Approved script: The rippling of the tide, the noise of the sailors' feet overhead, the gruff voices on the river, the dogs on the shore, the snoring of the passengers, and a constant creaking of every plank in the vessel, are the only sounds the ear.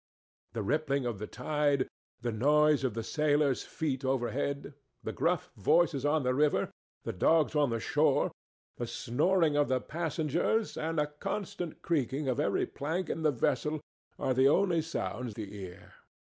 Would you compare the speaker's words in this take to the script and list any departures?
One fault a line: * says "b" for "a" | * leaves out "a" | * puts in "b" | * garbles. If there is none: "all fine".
all fine